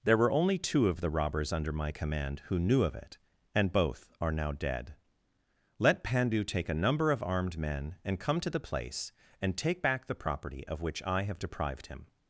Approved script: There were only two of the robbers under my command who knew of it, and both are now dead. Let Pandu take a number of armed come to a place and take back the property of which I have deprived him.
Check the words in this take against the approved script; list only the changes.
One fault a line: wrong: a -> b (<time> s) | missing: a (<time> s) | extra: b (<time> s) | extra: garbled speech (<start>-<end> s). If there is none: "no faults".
extra: men and (7.6 s)
wrong: a -> the (8.5 s)